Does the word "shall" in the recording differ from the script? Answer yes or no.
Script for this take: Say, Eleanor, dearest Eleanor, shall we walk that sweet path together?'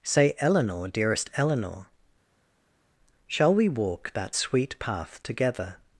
no